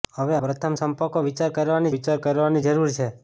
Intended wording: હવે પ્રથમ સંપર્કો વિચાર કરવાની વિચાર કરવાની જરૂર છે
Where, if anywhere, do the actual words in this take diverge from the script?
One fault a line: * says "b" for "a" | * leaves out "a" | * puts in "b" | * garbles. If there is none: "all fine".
all fine